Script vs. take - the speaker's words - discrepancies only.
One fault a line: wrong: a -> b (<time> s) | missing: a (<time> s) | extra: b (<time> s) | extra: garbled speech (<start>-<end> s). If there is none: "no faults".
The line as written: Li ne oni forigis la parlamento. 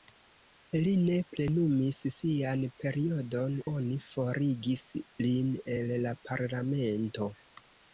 extra: plenumis sian periodon (1.3 s)
extra: lin el (5.3 s)